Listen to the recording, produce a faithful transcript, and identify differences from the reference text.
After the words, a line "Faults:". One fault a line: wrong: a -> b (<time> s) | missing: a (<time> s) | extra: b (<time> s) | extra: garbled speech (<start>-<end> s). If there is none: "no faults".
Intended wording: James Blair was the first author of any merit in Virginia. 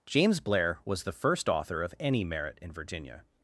James Blair was the first author of any merit in Virginia.
Faults:
no faults